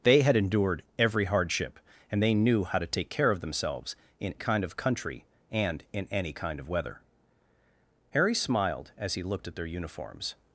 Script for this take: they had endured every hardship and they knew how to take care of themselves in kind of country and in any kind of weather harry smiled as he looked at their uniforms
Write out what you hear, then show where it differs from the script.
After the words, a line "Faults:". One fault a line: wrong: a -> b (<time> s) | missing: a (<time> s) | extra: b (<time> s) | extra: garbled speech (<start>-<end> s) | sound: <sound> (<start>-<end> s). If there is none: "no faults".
they had endured every hardship and they knew how to take care of themselves in kind of country and in any kind of weather harry smiled as he looked at their uniforms
Faults:
no faults